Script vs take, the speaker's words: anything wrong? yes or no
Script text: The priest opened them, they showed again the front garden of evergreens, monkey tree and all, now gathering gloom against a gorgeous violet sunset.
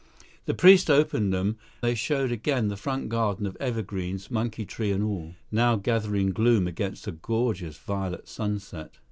no